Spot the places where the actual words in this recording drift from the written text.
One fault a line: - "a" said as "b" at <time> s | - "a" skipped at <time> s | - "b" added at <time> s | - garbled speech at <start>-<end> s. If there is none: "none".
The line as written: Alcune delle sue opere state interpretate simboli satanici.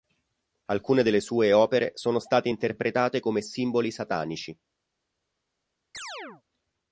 - "sono" added at 1.9 s
- "come" added at 3.2 s